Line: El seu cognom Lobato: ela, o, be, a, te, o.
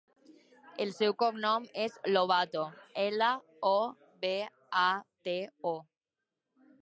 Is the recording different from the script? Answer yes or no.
yes